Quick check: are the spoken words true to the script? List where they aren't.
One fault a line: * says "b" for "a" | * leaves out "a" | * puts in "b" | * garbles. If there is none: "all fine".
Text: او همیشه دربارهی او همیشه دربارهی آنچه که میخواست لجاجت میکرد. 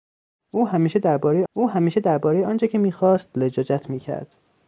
all fine